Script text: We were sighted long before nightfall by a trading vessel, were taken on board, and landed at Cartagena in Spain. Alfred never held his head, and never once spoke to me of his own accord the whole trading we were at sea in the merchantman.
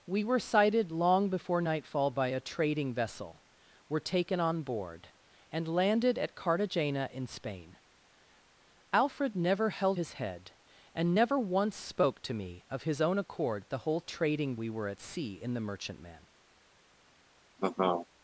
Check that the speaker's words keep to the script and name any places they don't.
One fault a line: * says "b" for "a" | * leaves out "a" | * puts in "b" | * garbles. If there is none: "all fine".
all fine